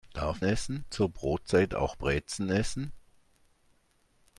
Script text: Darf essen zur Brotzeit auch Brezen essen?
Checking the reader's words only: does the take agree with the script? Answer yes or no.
yes